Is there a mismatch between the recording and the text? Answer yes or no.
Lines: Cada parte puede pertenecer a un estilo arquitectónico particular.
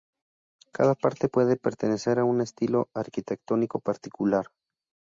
no